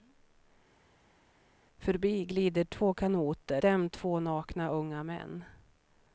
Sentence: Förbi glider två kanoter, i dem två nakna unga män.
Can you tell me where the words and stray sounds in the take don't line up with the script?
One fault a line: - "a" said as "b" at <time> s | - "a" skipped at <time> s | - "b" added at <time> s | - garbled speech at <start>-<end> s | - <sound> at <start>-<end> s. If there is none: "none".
- "i" skipped at 3.6 s